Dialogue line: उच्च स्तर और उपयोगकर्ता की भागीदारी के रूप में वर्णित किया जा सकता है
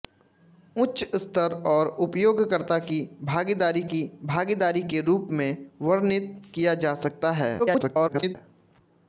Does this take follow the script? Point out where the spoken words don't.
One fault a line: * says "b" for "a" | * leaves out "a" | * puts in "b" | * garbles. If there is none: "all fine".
* puts in "की भागीदारी"
* garbles